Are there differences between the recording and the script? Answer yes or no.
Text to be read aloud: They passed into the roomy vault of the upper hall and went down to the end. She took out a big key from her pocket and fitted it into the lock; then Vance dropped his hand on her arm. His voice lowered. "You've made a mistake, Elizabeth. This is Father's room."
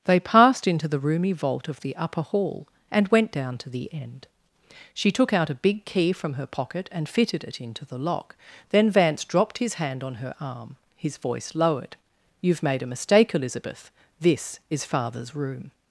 no